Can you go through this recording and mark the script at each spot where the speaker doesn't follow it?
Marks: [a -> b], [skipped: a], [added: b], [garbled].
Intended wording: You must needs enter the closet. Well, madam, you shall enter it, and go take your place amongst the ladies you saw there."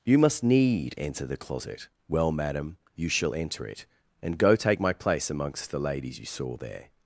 You must [needs -> need] enter the closet. Well, madam, you shall enter it, and go take [your -> my] place amongst the ladies you saw there."